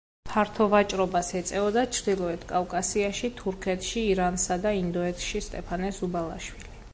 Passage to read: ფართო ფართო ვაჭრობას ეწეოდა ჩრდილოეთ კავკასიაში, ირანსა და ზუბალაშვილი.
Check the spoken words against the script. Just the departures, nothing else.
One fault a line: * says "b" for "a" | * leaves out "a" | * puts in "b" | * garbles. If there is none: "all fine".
* leaves out "ფართო"
* puts in "თურქეთში"
* puts in "ინდოეთში სტეფანე"